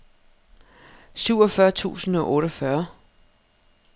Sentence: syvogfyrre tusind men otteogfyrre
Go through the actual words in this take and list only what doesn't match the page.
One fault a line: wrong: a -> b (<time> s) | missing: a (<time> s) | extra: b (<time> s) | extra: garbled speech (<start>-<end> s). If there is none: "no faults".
wrong: men -> og (2.1 s)